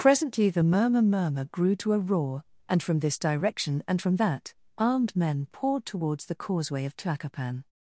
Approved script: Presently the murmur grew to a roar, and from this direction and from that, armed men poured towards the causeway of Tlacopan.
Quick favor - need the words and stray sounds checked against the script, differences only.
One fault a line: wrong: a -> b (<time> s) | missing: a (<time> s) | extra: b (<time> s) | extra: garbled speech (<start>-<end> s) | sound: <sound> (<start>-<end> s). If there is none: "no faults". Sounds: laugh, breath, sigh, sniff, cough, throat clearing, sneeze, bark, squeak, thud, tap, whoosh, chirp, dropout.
extra: murmur (1.0 s)